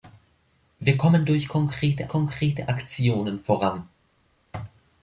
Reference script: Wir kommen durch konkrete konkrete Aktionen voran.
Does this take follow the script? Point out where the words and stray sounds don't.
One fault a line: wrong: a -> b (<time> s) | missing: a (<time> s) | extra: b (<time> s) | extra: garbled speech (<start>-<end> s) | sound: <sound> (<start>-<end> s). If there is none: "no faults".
no faults